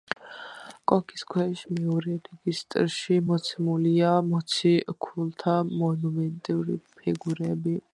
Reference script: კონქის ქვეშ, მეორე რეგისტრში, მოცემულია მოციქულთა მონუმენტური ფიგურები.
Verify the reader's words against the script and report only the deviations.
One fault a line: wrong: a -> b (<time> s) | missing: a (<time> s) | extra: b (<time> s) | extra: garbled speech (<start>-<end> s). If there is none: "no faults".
no faults